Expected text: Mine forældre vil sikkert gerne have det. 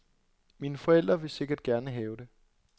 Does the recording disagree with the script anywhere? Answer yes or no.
no